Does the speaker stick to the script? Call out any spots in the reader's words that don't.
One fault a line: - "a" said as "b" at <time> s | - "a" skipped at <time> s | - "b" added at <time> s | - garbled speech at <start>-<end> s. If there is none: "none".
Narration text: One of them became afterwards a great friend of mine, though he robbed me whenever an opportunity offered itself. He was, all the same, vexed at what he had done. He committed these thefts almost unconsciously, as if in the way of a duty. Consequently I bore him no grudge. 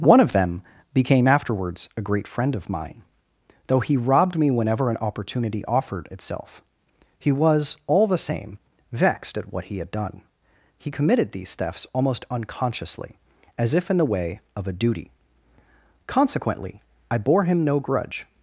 none